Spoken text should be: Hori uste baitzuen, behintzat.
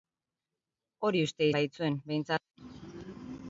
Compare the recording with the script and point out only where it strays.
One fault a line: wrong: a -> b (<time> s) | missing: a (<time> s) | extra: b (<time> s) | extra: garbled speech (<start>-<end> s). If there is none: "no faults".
no faults